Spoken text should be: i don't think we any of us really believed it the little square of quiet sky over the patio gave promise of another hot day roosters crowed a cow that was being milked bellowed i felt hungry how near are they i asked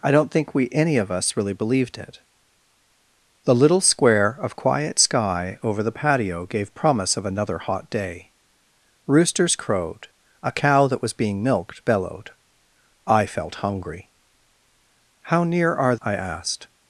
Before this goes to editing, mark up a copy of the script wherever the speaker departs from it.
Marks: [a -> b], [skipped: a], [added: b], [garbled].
i don't think we any of us really believed it the little square of quiet sky over the patio gave promise of another hot day roosters crowed a cow that was being milked bellowed i felt hungry how near are [skipped: they] i asked